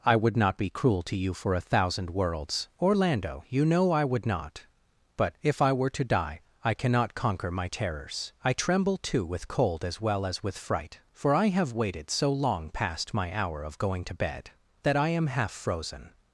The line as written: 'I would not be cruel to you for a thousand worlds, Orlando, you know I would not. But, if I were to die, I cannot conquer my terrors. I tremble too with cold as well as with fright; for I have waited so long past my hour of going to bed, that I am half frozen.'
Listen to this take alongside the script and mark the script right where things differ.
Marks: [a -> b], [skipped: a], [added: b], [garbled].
'I would not be cruel to you for a thousand worlds, Orlando, you know I would not. But, if I were to die, I cannot conquer my terrors. I tremble too with cold as well as with fright; for I have waited so long past my hour of going to bed, that I am half frozen.'